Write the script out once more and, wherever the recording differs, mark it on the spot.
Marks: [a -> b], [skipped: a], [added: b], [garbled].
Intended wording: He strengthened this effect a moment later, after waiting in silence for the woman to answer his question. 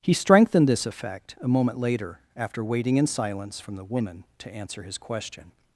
He strengthened this effect a moment later, after waiting in silence [for -> from] the woman to answer his question.